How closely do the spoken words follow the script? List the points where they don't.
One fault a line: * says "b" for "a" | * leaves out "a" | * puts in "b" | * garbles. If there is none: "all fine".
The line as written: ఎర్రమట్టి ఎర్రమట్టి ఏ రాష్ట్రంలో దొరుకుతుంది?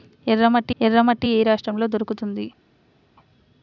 all fine